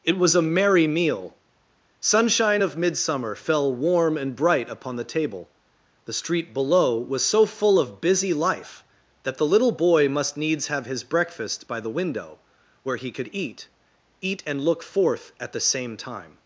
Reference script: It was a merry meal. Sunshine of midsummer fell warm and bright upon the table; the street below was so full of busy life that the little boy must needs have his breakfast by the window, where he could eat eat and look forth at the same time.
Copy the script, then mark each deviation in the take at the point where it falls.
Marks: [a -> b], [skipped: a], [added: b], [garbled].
It was a merry meal. Sunshine of midsummer fell warm and bright upon the table; the street below was so full of busy life that the little boy must needs have his breakfast by the window, where he could eat eat and look forth at the same time.